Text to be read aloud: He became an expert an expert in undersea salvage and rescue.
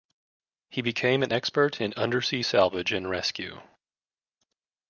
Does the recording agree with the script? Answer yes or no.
no